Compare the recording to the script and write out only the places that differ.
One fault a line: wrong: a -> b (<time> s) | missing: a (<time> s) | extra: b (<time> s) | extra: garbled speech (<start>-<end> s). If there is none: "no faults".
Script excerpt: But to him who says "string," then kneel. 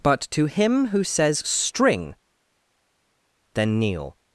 no faults